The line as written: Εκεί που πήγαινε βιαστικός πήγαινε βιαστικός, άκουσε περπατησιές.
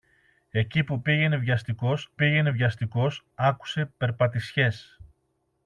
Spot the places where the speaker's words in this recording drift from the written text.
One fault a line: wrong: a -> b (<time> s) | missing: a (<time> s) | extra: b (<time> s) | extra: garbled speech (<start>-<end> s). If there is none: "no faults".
no faults